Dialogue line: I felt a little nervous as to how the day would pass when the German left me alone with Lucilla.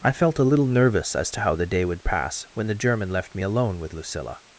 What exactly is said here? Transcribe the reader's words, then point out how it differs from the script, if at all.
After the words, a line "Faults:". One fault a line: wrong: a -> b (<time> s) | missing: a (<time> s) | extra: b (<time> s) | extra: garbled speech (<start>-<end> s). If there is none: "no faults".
I felt a little nervous as to how the day would pass when the German left me alone with Lucilla.
Faults:
no faults